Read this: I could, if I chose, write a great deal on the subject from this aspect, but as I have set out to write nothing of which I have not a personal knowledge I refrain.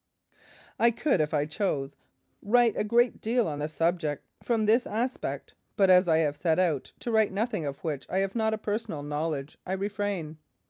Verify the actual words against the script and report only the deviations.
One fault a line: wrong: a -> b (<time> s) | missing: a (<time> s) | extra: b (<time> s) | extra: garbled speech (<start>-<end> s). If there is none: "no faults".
no faults